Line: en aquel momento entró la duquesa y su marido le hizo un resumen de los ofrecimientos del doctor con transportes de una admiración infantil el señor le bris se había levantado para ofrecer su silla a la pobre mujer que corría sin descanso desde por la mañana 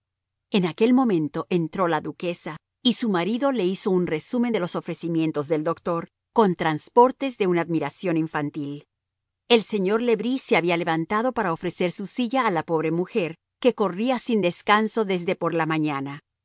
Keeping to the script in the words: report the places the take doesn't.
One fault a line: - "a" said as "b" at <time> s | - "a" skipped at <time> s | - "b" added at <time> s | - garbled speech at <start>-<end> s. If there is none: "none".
none